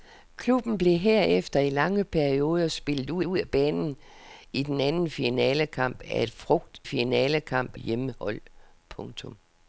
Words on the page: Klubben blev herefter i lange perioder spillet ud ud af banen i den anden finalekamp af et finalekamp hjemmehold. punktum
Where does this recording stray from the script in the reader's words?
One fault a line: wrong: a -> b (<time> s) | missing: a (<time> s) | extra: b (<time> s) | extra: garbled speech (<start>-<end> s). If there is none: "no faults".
no faults